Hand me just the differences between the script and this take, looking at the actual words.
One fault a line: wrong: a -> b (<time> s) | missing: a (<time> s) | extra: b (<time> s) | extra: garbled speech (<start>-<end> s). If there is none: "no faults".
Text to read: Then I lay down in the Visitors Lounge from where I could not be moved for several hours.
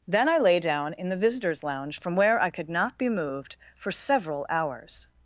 no faults